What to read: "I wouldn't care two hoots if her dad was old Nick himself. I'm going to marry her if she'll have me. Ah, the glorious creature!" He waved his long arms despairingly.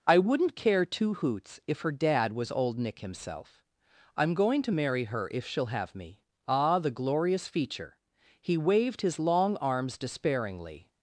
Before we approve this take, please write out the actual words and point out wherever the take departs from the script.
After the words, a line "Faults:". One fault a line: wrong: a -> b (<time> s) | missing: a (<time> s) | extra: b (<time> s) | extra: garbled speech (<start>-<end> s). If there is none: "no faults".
"I wouldn't care two hoots if her dad was old Nick himself. I'm going to marry her if she'll have me. Ah, the glorious feature!" He waved his long arms despairingly.
Faults:
wrong: creature -> feature (7.5 s)